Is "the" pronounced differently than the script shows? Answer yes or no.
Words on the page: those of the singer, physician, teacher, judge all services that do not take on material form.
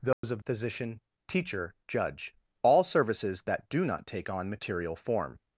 yes